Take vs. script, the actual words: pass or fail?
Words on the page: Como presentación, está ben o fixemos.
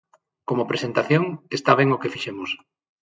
fail